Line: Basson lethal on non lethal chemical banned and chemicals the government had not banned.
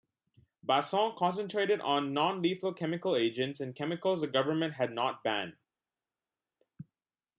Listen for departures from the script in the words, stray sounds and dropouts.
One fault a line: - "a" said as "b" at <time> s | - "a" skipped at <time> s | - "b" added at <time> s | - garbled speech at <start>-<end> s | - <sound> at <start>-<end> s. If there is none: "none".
- "lethal" said as "concentrated" at 1.1 s
- "banned" said as "agents" at 3.1 s